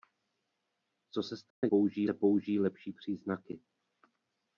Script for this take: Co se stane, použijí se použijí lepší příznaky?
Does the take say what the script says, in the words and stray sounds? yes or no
no